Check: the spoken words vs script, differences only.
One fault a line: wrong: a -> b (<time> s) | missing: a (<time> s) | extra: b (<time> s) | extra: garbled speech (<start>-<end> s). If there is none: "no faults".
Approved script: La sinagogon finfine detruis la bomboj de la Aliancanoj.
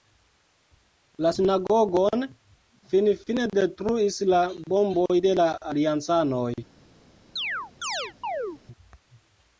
no faults